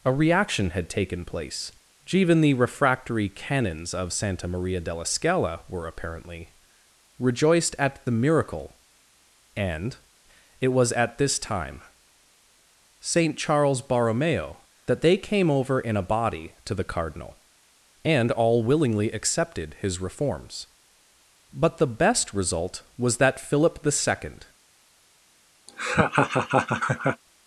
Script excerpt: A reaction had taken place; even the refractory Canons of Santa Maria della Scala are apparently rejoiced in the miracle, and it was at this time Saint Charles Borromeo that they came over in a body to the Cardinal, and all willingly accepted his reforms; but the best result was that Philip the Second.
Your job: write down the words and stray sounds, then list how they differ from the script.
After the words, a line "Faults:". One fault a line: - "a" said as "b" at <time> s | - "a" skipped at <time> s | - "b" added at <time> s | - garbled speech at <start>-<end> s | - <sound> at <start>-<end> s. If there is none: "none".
A reaction had taken place; even the refractory Canons of Santa Maria della Scala were apparently rejoiced at the miracle, and it was at this time Saint Charles Borromeo that they came over in a body to the Cardinal, and all willingly accepted his reforms; but the best result was that Philip the Second.
Faults:
- "are" said as "were" at 5.7 s
- "in" said as "at" at 7.8 s
- laugh at 25.7-27.2 s